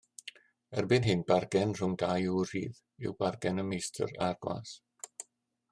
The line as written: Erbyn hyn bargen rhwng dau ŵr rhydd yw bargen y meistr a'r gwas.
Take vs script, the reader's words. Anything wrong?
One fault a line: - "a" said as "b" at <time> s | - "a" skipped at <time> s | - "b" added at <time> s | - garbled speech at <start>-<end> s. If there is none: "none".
none